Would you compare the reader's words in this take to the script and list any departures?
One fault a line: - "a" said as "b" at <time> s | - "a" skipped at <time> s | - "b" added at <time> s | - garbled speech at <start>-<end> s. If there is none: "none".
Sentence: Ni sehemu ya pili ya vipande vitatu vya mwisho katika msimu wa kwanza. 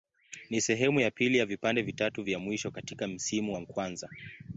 none